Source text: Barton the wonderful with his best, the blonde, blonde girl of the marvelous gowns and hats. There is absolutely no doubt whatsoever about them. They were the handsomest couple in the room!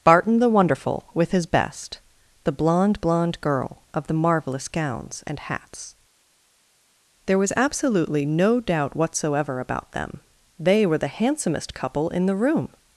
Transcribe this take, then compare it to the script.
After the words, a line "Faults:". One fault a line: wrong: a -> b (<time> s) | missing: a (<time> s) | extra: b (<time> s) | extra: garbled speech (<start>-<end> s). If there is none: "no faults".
Barton the wonderful with his best, the blonde, blonde girl of the marvelous gowns and hats. There was absolutely no doubt whatsoever about them. They were the handsomest couple in the room!
Faults:
wrong: is -> was (7.4 s)